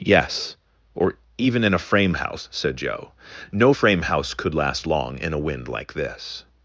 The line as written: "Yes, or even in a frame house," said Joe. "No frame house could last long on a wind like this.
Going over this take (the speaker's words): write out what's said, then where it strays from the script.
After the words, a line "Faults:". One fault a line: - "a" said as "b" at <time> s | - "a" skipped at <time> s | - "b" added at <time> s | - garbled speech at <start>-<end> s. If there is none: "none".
"Yes, or even in a frame house," said Joe. "No frame house could last long in a wind like this.
Faults:
- "on" said as "in" at 5.2 s